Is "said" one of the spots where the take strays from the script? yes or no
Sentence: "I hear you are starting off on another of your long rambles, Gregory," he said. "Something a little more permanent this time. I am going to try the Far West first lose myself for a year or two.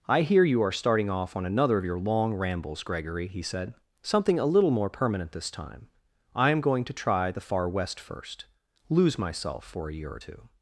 no